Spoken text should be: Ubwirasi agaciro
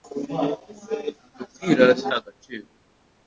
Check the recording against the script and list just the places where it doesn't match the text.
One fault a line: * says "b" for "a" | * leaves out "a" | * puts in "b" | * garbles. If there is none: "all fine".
all fine